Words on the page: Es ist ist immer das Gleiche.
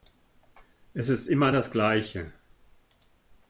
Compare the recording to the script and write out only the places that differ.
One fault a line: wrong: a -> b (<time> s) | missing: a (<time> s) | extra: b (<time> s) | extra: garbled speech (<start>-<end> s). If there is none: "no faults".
missing: ist (1.3 s)